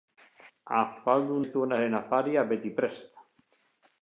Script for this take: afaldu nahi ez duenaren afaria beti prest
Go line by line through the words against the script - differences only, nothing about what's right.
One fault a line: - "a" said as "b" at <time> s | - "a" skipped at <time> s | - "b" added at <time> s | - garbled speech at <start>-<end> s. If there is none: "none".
- "nahi" skipped at 1.4 s